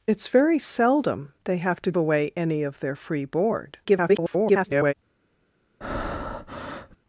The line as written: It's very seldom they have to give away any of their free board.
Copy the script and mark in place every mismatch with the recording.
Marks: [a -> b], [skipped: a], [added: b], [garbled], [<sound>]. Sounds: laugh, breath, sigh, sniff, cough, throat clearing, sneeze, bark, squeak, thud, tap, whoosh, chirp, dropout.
It's very seldom they have to [skipped: give] away any of their free board. [garbled] [breath]